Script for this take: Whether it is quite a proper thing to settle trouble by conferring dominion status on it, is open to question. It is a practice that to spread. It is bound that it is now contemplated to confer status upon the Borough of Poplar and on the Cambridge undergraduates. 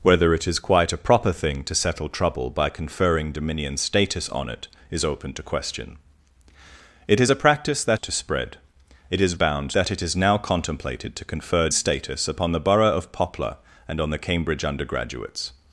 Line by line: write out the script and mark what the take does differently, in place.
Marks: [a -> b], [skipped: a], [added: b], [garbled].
Whether it is quite a proper thing to settle trouble by conferring dominion status on it, is open to question. It is a practice that to spread. It is bound that it is now contemplated to confer status upon the Borough of Poplar and on the Cambridge undergraduates.